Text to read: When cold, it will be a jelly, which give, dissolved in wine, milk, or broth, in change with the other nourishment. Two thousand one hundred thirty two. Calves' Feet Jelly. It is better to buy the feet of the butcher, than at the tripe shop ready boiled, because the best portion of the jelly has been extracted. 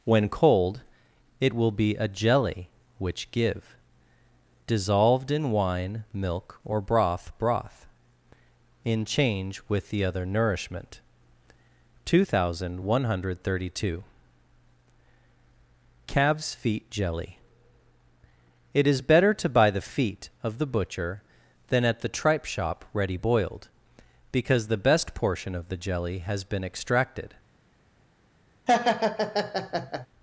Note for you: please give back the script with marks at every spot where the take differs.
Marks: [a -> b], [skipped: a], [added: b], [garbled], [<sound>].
When cold, it will be a jelly, which give, dissolved in wine, milk, or broth, [added: broth] in change with the other nourishment. Two thousand one hundred thirty two. Calves' Feet Jelly. It is better to buy the feet of the butcher, than at the tripe shop ready boiled, because the best portion of the jelly has been extracted. [laugh]